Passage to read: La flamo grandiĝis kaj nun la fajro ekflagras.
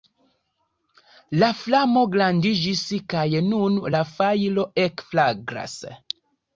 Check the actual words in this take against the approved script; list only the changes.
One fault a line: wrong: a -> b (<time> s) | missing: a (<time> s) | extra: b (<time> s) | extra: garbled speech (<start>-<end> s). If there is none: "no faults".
no faults